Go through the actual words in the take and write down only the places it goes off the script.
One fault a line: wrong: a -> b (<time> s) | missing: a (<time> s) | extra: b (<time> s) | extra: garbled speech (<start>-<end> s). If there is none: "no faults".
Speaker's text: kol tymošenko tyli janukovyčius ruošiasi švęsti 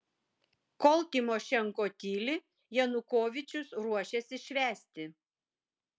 no faults